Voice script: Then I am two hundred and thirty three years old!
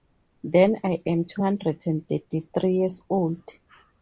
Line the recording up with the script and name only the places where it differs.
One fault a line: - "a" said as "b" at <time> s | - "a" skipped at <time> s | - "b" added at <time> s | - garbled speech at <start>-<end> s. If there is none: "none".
none